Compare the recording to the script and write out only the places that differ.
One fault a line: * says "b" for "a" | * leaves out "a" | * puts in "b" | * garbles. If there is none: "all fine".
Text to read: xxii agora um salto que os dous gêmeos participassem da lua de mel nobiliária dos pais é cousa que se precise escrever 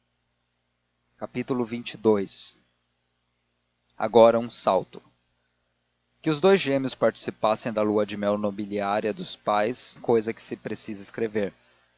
all fine